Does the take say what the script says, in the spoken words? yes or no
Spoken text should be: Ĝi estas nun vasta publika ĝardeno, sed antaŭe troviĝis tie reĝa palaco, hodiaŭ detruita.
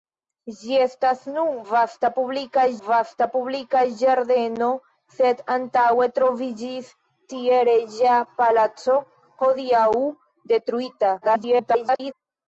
no